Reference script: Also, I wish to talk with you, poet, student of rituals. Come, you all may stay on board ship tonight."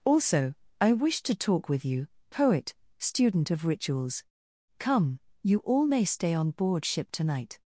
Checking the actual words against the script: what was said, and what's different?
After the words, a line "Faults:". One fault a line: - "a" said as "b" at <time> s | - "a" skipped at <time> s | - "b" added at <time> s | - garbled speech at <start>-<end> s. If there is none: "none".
Also, I wish to talk with you, poet, student of rituals. Come, you all may stay on board ship tonight."
Faults:
none